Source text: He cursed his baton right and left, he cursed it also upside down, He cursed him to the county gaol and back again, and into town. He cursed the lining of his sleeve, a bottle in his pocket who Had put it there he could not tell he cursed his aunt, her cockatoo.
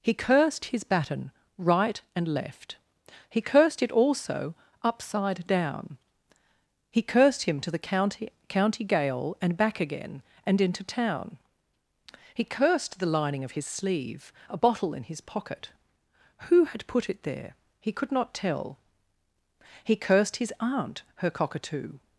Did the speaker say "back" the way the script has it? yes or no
yes